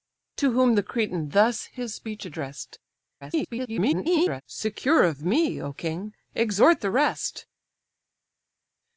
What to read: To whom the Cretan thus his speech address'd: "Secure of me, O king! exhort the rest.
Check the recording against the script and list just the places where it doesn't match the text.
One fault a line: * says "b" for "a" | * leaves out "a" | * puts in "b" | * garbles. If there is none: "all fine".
* garbles